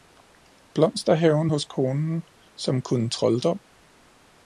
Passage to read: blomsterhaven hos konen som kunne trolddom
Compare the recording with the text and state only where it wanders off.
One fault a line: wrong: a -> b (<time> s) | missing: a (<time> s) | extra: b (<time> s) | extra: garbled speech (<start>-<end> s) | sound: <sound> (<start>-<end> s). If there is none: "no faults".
no faults